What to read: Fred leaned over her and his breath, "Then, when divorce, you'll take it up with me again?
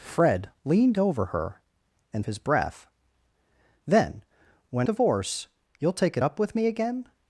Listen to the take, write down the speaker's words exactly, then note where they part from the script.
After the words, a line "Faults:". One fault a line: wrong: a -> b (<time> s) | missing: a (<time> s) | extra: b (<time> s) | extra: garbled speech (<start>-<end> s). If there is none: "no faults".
Fred leaned over her and his breath, "Then, when divorce, you'll take it up with me again?
Faults:
no faults